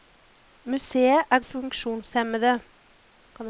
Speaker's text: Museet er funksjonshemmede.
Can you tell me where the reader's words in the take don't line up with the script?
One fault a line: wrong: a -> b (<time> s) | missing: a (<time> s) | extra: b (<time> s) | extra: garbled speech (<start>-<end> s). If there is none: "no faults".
no faults